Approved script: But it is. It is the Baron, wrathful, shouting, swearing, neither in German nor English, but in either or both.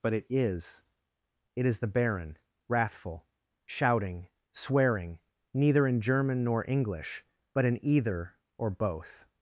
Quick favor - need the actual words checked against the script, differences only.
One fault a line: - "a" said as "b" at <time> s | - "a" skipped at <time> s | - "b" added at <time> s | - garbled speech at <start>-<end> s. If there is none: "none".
none